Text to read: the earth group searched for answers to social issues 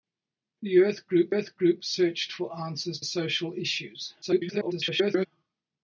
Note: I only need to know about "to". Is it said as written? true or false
false